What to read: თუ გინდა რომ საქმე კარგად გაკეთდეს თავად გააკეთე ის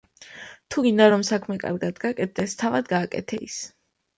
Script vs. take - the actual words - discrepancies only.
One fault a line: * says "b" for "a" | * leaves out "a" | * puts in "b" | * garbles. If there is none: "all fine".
all fine